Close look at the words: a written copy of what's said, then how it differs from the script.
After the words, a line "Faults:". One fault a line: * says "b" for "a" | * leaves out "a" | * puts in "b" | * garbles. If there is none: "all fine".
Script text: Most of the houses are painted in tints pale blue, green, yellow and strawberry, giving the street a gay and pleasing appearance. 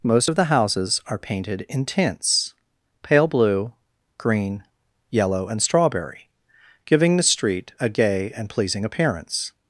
Most of the houses are painted in tints pale blue, green, yellow and strawberry, giving the street a gay and pleasing appearance.
Faults:
all fine